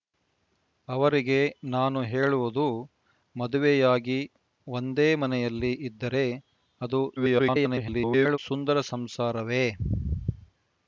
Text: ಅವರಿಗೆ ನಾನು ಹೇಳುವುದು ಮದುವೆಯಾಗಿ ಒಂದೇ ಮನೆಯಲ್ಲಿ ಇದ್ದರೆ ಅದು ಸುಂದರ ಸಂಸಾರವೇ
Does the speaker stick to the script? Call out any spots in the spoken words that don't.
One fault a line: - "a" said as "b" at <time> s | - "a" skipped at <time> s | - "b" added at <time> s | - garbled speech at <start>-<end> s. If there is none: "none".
- garbled speech at 7.2-8.4 s